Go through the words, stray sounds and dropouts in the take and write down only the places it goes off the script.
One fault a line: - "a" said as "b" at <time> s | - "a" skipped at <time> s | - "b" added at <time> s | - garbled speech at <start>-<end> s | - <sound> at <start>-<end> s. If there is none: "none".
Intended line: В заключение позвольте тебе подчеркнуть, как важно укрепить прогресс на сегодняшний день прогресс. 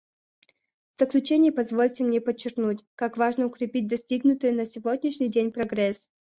- "тебе" said as "мне" at 2.0 s
- "прогресс" said as "достигнутый" at 3.9 s